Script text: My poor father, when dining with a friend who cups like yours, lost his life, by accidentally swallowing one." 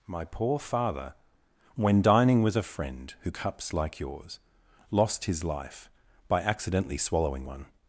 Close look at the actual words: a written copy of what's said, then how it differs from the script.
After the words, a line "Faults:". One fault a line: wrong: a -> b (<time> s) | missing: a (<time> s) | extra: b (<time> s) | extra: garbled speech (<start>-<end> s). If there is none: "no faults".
My poor father, when dining with a friend who cups like yours, lost his life, by accidentally swallowing one."
Faults:
no faults